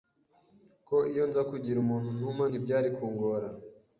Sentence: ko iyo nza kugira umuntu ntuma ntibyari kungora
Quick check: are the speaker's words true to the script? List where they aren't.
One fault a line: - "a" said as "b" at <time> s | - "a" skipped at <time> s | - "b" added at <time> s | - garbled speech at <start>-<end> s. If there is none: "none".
none